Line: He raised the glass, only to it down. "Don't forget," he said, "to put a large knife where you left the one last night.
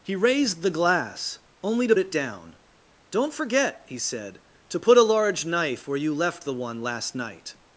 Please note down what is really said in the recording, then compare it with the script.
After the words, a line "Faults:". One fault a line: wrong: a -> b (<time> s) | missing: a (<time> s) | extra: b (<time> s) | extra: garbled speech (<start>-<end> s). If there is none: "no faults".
He raised the glass, only to it down. "Don't forget," he said, "to put a large knife where you left the one last night.
Faults:
no faults